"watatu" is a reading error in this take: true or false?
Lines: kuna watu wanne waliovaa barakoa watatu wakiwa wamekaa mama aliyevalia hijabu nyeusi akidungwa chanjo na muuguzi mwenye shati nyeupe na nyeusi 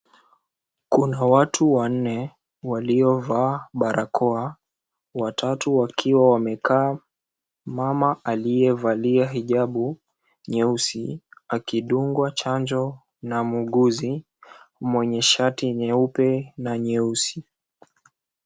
false